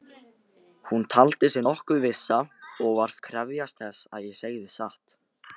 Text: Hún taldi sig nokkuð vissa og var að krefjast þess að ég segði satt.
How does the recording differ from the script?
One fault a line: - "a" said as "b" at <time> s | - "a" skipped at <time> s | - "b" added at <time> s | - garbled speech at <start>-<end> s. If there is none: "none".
none